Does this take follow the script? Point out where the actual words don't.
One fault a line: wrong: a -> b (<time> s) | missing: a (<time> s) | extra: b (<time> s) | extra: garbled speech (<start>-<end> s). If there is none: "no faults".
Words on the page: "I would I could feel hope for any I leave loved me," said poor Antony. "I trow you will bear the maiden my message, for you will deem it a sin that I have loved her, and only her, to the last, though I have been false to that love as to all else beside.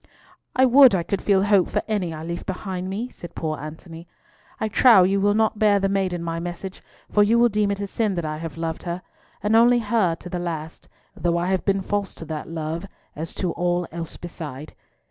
wrong: loved -> behind (2.5 s)
extra: not (5.3 s)